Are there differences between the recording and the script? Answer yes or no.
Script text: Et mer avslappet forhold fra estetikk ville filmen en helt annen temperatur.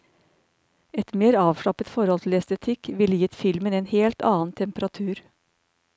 yes